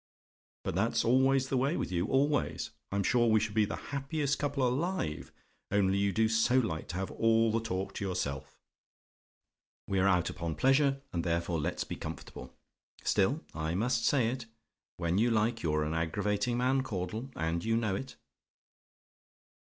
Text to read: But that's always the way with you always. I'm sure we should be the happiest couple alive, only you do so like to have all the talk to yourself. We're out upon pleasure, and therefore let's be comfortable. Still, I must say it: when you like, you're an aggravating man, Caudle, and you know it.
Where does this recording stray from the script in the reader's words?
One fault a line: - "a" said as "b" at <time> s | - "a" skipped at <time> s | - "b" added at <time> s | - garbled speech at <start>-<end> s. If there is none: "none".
none